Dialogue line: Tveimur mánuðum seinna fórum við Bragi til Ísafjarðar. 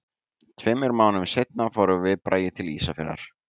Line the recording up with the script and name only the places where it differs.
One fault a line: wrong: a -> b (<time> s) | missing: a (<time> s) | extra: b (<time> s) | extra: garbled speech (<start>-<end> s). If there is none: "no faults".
no faults